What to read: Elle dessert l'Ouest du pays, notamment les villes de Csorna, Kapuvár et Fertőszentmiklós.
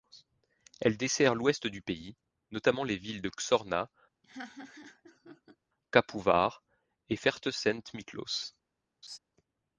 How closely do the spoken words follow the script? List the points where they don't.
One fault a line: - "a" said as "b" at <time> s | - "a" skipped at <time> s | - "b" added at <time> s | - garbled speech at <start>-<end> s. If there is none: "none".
none